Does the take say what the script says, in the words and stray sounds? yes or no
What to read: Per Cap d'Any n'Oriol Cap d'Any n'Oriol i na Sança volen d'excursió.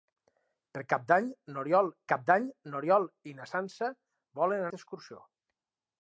yes